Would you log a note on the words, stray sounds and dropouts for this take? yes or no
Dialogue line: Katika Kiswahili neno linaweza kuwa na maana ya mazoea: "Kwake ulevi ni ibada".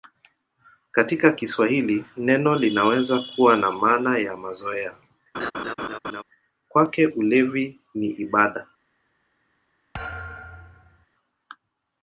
yes